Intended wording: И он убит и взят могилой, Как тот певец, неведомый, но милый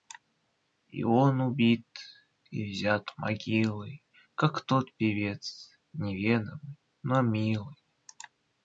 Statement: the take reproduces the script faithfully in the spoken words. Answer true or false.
true